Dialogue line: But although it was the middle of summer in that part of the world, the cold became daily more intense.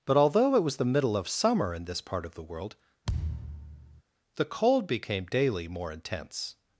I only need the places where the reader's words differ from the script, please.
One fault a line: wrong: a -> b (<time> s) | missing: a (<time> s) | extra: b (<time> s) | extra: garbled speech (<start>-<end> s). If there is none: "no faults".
wrong: that -> this (1.9 s)